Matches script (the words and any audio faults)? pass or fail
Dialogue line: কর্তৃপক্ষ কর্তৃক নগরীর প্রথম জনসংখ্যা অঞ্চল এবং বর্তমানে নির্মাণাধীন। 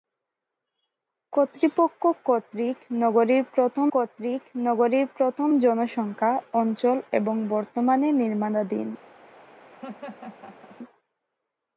fail